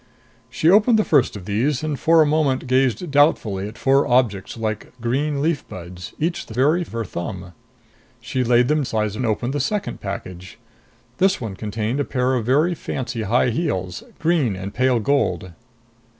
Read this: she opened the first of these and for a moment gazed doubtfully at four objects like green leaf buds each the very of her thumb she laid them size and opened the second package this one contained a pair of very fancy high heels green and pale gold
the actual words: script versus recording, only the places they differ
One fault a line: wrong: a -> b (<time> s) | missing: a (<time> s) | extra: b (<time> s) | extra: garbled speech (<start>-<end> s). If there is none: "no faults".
no faults